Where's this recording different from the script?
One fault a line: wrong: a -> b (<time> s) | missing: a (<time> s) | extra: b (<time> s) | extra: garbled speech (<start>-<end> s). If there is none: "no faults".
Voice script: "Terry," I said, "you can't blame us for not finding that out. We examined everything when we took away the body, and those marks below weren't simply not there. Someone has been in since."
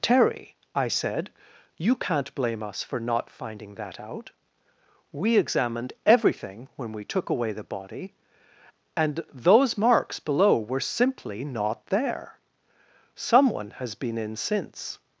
wrong: weren't -> were (10.6 s)